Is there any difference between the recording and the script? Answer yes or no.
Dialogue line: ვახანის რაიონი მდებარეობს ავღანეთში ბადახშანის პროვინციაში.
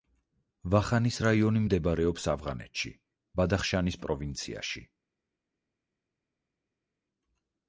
no